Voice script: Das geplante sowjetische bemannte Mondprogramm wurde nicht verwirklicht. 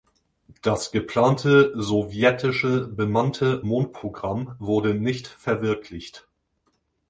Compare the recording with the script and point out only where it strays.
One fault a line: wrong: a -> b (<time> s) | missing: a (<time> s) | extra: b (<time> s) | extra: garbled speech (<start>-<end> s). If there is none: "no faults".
no faults